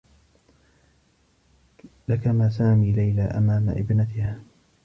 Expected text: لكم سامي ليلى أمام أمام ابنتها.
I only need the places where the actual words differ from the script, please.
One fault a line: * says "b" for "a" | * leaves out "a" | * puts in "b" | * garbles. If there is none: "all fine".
* leaves out "أمام"